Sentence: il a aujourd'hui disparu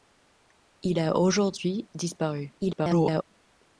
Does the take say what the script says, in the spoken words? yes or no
no